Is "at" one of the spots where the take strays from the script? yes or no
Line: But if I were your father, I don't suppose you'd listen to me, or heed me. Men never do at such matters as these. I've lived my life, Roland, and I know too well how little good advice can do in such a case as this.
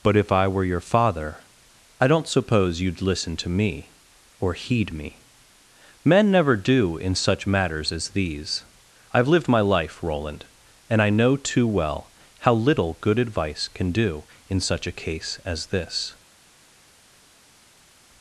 yes